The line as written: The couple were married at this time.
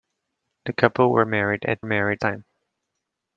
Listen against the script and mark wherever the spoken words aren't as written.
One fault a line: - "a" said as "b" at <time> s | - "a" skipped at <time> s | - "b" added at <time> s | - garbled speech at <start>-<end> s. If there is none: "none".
- "this" said as "married" at 1.9 s